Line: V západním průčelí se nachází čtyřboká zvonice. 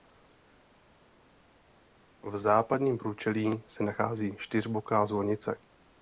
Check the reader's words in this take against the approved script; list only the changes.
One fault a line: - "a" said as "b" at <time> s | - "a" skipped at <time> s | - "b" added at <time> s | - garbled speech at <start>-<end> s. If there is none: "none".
none